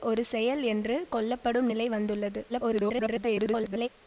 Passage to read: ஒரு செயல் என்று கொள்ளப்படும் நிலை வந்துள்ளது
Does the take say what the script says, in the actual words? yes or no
no